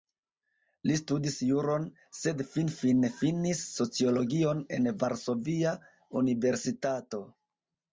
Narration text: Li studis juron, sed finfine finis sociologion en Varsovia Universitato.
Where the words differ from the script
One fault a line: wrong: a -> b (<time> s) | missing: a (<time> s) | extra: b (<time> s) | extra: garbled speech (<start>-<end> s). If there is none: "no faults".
no faults